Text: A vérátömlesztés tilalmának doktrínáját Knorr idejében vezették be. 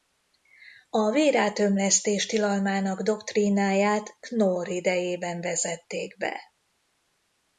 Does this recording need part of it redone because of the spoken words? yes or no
no